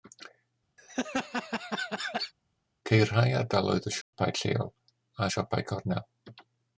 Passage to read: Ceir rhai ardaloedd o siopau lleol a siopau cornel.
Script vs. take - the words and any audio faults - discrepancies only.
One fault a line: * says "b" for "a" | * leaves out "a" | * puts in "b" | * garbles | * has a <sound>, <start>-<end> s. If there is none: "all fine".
* has a laugh, 0.8-2.3 s
* has a dropout, 4.0-4.1 s